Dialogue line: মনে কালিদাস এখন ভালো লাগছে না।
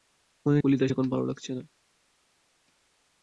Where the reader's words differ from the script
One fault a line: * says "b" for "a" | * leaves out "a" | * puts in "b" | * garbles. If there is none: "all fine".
all fine